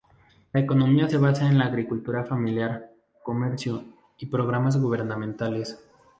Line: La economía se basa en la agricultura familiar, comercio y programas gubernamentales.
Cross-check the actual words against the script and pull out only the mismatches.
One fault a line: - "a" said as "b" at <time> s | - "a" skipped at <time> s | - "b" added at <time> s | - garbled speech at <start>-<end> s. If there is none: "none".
none